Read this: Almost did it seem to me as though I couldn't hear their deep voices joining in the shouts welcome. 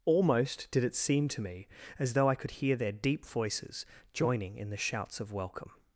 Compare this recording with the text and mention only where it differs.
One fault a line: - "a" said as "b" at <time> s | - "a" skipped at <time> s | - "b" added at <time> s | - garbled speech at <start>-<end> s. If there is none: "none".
- "couldn't" said as "could" at 2.4 s
- "of" added at 5.2 s